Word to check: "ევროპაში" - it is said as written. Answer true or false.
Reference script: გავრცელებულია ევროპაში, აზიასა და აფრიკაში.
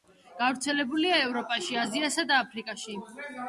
true